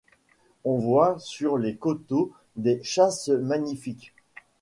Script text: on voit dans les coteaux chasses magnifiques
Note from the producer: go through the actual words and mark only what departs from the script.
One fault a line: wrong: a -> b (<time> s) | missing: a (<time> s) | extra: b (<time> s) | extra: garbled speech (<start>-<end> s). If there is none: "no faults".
wrong: dans -> sur (1.2 s)
extra: des (2.6 s)